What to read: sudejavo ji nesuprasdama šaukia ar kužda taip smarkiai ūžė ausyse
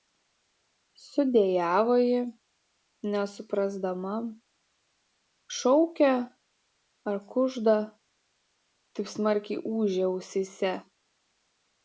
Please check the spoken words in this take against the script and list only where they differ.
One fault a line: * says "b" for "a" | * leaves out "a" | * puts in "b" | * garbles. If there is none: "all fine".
all fine